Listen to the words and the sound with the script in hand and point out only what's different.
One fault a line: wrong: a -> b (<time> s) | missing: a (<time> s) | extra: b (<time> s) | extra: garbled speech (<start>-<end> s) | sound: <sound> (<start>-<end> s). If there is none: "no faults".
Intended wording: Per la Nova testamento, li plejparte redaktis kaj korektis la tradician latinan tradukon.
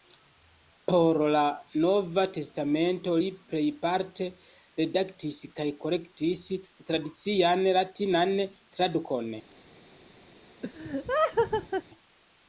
wrong: Per -> Por (0.9 s)
sound: laugh (10.6-11.8 s)